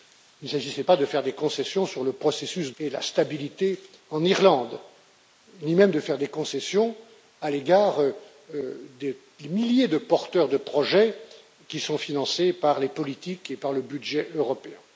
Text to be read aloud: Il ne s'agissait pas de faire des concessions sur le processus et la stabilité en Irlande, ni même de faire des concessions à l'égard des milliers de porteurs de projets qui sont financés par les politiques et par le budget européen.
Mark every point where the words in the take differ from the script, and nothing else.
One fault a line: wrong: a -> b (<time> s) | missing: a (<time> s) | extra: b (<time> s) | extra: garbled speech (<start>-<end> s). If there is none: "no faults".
no faults